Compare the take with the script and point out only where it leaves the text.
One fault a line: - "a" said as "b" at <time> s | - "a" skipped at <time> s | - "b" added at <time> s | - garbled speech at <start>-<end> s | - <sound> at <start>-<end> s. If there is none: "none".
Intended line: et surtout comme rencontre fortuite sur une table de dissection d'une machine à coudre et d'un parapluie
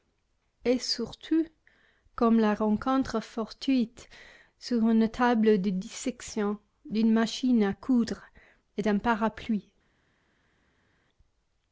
- "la" added at 2.4 s